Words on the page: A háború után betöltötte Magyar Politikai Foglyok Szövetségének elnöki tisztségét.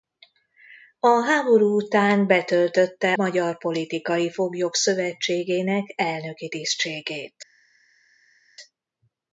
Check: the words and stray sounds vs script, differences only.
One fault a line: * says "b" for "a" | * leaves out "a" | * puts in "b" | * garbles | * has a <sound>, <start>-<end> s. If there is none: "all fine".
all fine